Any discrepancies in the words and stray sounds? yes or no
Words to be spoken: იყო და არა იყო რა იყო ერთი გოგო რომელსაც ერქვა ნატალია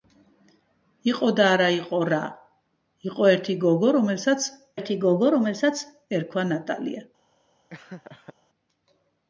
yes